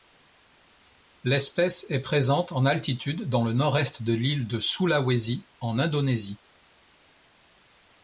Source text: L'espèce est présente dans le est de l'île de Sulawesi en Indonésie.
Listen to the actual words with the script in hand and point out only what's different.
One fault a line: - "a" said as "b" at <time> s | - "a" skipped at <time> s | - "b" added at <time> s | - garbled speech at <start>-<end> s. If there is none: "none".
- "en altitude" added at 2.5 s
- "nord" added at 3.5 s